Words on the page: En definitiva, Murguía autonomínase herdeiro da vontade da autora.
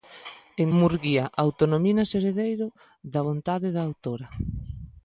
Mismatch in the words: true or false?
true